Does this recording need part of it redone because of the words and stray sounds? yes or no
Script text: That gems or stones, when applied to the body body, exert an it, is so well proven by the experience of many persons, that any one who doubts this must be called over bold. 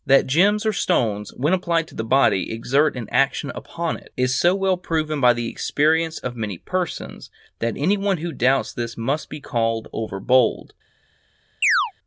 yes